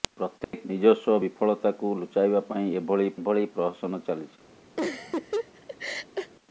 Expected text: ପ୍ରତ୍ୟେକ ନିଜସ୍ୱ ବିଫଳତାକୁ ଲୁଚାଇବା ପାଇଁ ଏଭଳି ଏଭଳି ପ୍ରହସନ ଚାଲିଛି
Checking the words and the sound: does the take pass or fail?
fail